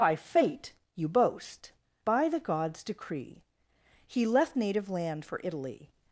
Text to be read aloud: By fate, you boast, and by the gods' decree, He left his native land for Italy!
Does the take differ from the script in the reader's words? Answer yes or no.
yes